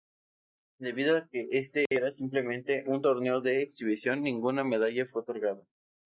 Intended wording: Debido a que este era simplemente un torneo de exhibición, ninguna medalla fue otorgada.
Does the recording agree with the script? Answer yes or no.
yes